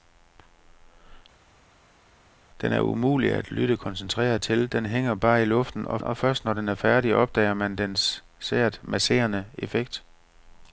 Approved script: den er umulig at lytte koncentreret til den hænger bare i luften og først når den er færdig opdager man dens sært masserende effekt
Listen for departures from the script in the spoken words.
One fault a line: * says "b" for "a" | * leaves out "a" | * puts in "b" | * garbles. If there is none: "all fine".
* puts in "og"